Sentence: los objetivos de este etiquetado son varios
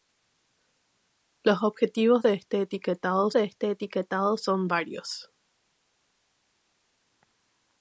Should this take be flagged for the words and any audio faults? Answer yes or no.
yes